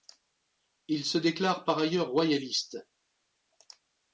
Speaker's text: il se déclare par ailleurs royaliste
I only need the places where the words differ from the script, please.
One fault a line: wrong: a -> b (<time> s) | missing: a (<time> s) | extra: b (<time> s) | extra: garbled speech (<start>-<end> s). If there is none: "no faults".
no faults